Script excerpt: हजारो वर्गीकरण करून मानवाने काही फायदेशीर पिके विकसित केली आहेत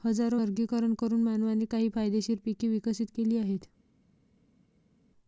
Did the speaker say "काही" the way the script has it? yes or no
yes